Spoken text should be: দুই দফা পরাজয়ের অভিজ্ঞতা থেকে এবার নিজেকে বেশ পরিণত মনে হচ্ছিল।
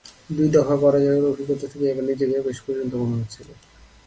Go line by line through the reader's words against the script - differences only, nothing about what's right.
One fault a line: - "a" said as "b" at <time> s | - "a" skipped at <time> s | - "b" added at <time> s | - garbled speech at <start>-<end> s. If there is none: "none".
none